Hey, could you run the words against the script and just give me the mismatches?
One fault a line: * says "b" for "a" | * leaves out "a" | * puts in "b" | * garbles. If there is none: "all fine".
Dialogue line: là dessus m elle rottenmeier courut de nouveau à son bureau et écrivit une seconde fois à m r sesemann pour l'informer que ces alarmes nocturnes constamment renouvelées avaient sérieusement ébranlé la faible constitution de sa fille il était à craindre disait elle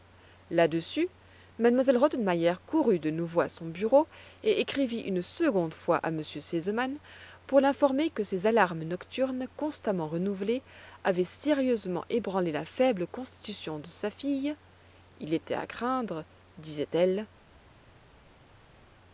all fine